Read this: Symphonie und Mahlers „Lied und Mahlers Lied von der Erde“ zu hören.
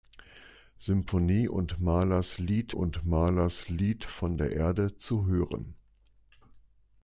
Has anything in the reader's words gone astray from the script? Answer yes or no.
no